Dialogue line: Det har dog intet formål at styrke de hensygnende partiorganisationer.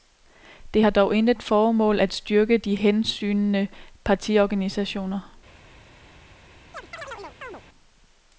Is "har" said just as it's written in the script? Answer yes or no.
yes